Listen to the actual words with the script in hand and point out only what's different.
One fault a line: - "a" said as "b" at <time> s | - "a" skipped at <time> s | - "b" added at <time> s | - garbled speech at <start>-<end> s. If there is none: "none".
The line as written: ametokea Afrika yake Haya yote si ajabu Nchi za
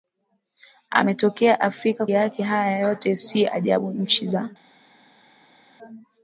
none